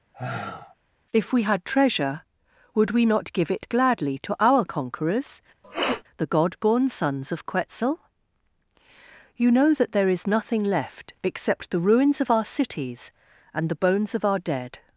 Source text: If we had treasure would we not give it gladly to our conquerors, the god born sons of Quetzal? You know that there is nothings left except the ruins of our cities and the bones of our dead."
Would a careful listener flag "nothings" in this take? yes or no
yes